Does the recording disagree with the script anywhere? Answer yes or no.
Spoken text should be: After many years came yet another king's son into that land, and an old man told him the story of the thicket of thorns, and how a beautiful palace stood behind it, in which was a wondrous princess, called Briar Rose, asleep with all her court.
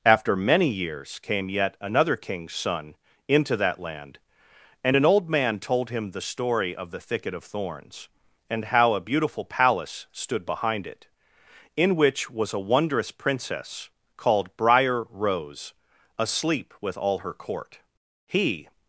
yes